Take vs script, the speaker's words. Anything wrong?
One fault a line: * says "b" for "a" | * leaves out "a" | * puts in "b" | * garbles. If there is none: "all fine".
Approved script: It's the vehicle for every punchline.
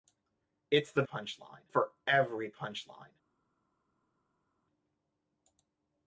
* says "punchline" for "vehicle"